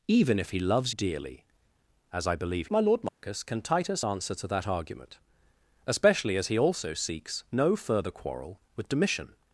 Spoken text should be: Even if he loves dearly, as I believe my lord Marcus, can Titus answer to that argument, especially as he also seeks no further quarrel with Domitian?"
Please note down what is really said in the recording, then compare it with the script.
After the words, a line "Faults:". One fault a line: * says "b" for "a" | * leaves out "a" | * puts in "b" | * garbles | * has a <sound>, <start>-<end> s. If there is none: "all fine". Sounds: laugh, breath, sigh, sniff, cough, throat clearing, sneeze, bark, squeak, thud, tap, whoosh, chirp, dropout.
Even if he loves dearly, as I believe my lord Marcus, can Titus answer to that argument, especially as he also seeks no further quarrel with Domitian?"
Faults:
* has a dropout, 3.1-3.2 s